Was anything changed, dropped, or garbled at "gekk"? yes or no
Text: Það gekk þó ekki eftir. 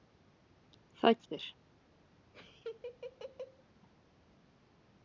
yes